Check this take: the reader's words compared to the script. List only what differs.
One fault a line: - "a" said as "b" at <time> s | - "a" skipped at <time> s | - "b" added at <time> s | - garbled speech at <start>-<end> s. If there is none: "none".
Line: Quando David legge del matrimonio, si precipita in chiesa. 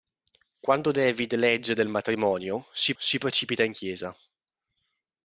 - "si" added at 3.0 s